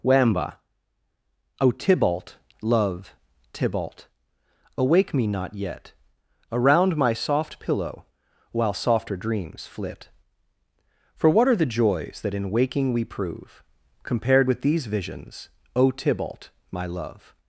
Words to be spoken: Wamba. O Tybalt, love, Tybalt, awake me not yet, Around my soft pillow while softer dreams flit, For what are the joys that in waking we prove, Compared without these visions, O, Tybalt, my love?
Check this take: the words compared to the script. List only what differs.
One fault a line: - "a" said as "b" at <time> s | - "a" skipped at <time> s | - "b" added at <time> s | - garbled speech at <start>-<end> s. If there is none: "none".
- "without" said as "with" at 14.5 s